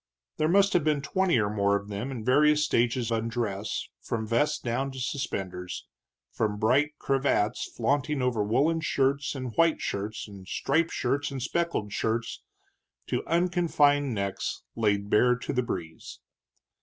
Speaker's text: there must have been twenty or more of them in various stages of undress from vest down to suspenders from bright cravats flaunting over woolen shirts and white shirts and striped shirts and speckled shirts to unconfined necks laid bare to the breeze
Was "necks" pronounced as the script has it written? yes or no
yes